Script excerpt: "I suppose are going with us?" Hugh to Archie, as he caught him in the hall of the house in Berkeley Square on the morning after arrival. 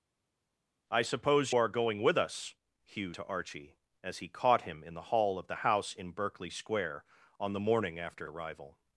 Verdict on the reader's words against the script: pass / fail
pass